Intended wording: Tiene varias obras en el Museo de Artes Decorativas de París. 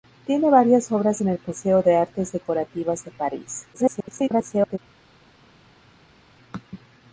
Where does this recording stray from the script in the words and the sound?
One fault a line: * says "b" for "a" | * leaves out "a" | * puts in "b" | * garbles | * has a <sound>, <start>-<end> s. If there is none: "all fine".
* garbles